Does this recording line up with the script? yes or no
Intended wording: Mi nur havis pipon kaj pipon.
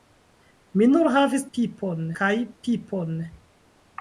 yes